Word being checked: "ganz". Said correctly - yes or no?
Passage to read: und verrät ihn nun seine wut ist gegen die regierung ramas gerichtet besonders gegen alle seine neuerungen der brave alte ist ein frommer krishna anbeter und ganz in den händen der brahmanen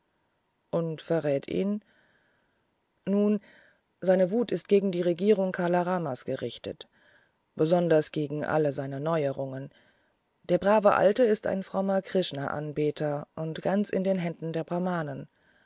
yes